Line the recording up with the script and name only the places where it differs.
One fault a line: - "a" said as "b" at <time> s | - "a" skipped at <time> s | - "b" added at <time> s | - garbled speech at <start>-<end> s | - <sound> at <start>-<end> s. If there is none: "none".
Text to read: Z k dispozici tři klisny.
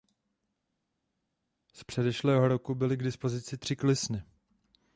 - "předešlého roku byly" added at 1.8 s